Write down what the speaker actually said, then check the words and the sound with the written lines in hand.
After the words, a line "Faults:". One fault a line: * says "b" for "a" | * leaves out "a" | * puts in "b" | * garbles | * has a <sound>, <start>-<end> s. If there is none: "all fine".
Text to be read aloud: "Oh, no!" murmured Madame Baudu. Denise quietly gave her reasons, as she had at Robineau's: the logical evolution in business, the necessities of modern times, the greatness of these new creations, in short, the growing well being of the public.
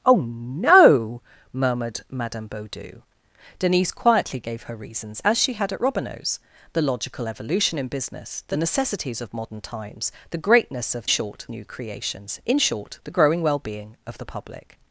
"Oh, no!" murmured Madame Baudu. Denise quietly gave her reasons, as she had at Robineau's: the logical evolution in business, the necessities of modern times, the greatness of short new creations, in short, the growing well being of the public.
Faults:
* says "short" for "these"